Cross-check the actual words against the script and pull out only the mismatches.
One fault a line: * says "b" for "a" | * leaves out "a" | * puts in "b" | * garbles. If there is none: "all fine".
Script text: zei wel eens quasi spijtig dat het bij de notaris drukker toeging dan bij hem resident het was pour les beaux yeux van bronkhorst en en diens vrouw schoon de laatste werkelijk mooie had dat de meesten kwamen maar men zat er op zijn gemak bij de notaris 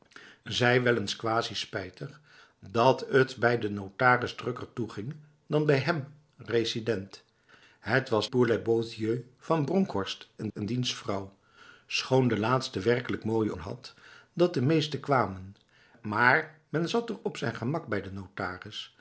all fine